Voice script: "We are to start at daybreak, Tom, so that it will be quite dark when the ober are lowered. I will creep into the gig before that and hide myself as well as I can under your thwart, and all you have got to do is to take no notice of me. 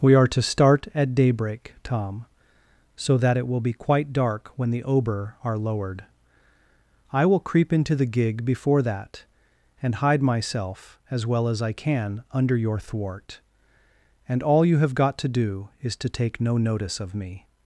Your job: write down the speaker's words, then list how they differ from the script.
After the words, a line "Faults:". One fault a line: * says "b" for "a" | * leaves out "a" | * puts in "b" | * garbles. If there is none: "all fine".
"We are to start at daybreak, Tom, so that it will be quite dark when the ober are lowered. I will creep into the gig before that and hide myself as well as I can under your thwart, and all you have got to do is to take no notice of me.
Faults:
all fine